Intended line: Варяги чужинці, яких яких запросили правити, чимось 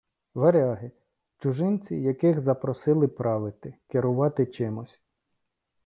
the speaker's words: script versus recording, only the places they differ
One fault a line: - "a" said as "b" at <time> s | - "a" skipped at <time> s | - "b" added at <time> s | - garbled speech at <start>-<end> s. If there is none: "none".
- "яких" skipped at 2.4 s
- "керувати" added at 3.9 s